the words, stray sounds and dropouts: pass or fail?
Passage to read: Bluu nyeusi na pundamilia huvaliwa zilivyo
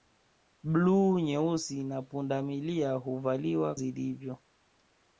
pass